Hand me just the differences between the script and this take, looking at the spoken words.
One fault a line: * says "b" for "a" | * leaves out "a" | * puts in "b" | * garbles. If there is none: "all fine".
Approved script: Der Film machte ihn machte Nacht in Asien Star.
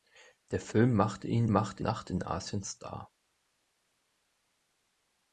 all fine